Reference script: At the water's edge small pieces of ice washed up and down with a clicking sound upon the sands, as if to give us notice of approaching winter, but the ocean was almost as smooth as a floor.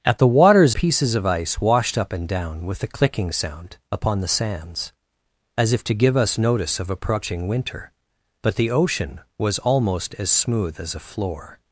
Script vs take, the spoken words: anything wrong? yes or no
yes